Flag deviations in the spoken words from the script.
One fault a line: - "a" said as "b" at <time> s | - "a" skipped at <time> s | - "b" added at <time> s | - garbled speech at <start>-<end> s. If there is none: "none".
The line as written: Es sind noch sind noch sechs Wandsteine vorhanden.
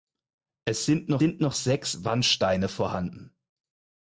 none